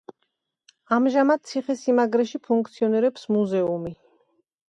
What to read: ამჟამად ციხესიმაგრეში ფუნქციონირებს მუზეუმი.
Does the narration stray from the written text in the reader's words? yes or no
no